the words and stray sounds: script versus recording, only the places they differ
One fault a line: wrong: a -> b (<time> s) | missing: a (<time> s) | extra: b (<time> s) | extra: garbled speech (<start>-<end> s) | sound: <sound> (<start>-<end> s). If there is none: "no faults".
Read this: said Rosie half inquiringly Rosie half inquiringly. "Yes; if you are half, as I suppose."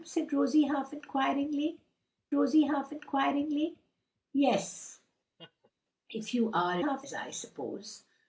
sound: laugh (5.4-5.7 s)